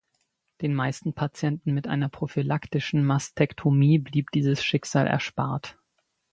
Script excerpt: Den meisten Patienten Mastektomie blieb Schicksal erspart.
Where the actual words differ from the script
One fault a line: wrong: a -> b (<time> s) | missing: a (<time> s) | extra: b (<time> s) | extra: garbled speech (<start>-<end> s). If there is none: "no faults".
extra: mit einer prophylaktischen (1.8 s)
extra: dieses (4.3 s)